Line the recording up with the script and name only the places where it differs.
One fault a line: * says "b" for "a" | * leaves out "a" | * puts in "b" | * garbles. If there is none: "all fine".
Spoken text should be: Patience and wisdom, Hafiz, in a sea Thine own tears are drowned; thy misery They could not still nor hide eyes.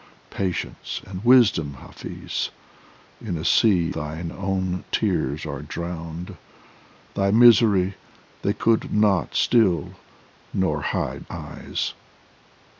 all fine